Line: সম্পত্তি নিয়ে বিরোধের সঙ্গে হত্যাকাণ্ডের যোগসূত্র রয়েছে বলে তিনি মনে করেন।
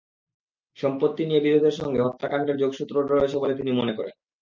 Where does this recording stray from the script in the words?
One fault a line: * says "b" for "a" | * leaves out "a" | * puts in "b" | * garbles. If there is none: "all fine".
all fine